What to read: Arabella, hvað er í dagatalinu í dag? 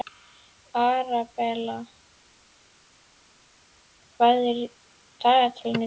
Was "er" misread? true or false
false